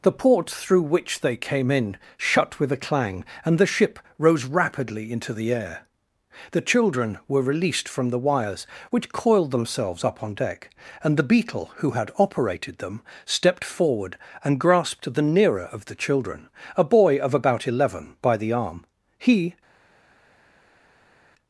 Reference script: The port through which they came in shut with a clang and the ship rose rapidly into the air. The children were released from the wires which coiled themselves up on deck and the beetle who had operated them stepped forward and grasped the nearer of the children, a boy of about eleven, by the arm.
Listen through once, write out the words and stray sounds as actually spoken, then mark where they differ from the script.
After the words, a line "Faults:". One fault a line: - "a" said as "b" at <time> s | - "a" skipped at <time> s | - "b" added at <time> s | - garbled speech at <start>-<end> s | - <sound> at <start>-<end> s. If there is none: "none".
The port through which they came in shut with a clang and the ship rose rapidly into the air. The children were released from the wires which coiled themselves up on deck and the beetle who had operated them stepped forward and grasped the nearer of the children, a boy of about eleven, by the arm. He
Faults:
- "He" added at 19.2 s